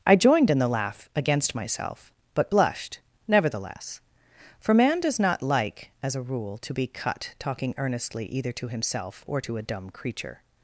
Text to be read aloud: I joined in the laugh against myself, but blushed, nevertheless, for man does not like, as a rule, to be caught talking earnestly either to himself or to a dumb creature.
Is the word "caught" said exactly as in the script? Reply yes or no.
no